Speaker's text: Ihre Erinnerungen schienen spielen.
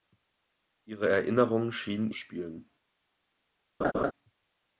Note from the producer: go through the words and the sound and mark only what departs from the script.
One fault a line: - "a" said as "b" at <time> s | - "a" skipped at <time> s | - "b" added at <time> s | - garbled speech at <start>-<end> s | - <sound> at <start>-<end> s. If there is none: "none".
- laugh at 3.8-4.1 s